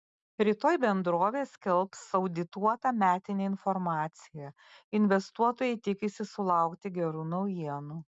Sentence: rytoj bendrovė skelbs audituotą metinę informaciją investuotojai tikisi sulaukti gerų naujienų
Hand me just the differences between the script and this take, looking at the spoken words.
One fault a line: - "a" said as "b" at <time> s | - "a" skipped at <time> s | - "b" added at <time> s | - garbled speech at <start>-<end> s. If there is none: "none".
none